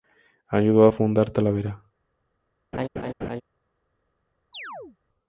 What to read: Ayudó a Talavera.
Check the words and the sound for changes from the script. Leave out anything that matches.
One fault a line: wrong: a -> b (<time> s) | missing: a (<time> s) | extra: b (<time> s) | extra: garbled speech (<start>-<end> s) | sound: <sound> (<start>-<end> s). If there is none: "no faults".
extra: fundar (0.9 s)
sound: laugh (2.7-3.4 s)
sound: chirp (4.5-5.0 s)